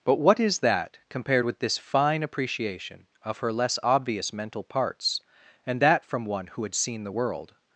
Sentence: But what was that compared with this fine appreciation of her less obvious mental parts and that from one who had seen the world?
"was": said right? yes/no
no